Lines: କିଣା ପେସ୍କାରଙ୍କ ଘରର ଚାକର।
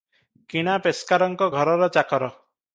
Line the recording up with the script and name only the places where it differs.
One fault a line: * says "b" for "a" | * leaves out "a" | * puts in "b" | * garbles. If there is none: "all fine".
all fine